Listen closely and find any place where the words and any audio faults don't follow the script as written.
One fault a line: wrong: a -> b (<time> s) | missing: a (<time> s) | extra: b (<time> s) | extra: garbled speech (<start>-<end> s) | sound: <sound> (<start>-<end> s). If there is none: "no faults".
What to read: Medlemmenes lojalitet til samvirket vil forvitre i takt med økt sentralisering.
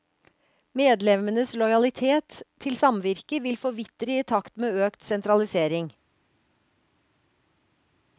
no faults